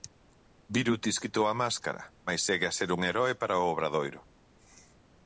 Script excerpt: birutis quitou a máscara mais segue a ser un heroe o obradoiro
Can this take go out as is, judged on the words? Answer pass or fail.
fail